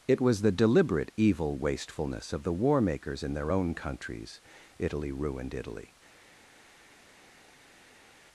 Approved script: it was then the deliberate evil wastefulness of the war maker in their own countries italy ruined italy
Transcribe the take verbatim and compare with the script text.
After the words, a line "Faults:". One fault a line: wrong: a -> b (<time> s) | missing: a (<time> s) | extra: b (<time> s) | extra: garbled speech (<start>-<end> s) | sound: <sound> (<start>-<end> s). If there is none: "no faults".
it was the deliberate evil wastefulness of the war makers in their own countries italy ruined italy
Faults:
missing: then (0.4 s)
wrong: maker -> makers (2.8 s)